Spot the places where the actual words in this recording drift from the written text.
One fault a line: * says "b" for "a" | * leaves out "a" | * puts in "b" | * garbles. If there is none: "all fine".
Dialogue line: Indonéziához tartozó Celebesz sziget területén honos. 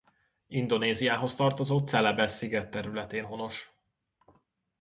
all fine